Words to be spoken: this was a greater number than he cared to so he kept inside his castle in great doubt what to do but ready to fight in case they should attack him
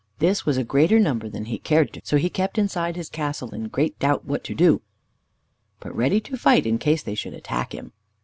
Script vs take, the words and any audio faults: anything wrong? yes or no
no